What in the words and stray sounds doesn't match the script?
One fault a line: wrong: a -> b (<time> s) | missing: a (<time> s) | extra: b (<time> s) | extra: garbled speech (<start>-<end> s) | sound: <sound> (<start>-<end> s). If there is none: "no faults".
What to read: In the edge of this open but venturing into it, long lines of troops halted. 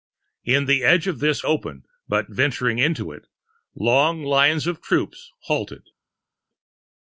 no faults